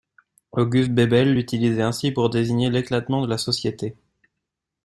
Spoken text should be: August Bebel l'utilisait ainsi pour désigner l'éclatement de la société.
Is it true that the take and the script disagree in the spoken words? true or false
false